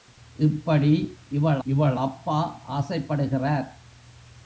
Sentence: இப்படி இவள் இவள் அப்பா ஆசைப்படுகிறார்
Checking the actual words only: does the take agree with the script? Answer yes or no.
yes